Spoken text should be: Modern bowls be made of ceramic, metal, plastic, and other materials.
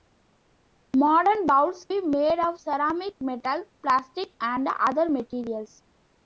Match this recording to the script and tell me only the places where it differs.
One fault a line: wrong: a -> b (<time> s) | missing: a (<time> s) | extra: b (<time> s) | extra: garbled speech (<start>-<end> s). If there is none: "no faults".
no faults